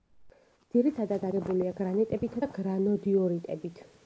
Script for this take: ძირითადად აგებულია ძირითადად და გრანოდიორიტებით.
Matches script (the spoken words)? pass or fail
fail